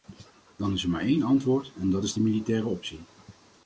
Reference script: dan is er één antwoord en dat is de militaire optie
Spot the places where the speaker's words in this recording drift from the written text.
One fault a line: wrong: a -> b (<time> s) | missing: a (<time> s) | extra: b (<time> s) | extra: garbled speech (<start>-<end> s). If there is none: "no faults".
extra: maar (0.9 s)